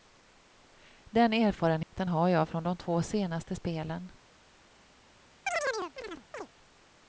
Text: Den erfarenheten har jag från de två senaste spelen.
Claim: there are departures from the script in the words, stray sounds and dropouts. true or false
true